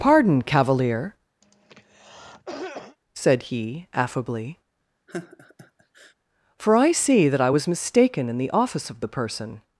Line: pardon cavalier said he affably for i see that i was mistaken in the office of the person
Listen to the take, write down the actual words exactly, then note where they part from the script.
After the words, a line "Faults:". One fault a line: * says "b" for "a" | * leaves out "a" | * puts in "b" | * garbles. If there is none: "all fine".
pardon cavalier said he affably for i see that i was mistaken in the office of the person
Faults:
all fine